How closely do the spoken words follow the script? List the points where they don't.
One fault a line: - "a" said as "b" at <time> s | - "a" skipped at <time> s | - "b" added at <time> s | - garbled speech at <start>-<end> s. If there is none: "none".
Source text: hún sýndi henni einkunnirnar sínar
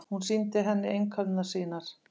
none